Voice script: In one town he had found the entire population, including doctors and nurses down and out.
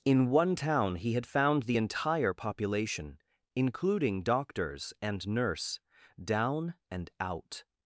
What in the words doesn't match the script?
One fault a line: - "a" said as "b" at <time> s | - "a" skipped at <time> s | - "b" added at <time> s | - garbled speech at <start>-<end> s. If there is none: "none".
- "nurses" said as "nurse" at 5.3 s